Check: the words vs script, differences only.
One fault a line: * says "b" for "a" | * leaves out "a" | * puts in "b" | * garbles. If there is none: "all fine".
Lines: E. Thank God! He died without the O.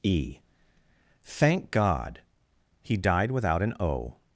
* says "an" for "the"